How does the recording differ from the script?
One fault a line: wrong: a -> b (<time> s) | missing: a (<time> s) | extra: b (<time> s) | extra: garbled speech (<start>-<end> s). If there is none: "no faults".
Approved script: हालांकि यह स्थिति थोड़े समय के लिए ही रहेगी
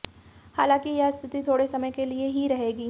no faults